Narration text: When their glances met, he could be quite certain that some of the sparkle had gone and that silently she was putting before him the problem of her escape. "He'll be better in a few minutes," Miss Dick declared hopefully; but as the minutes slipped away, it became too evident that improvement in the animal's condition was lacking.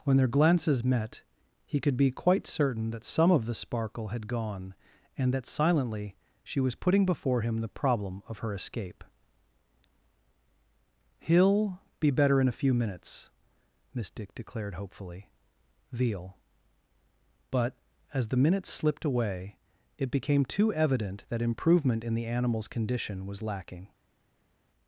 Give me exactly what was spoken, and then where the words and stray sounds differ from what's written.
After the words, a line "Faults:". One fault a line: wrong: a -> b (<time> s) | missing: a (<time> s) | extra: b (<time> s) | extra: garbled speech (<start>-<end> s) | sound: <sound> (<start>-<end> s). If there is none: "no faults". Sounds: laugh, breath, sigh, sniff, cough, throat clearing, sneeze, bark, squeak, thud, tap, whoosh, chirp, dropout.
When their glances met, he could be quite certain that some of the sparkle had gone and that silently she was putting before him the problem of her escape. "He'll be better in a few minutes," Miss Dick declared hopefully; veal but as the minutes slipped away, it became too evident that improvement in the animal's condition was lacking.
Faults:
extra: veal (15.9 s)